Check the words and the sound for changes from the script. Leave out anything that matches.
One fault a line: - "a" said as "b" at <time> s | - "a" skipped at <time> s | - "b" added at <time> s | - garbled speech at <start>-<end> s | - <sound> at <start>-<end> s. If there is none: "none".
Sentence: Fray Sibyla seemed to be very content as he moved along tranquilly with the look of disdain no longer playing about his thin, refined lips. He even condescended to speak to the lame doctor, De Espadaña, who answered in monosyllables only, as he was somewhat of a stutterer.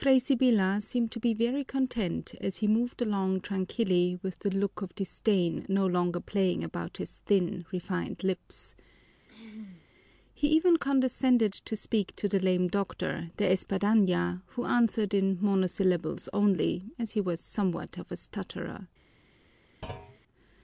- throat clearing at 9.3-9.8 s
- thud at 19.8-20.2 s